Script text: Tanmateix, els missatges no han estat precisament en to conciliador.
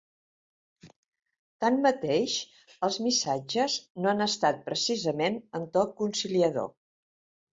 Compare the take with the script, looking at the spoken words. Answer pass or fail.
pass